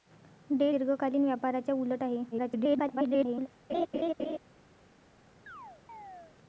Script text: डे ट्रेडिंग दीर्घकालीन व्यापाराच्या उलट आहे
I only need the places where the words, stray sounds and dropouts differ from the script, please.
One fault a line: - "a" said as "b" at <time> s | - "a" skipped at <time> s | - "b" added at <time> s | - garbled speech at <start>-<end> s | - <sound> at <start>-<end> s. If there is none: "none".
- "ट्रेडिंग" skipped at 0.7 s
- garbled speech at 2.3-3.5 s
- laugh at 3.7-4.4 s
- chirp at 5.5-6.4 s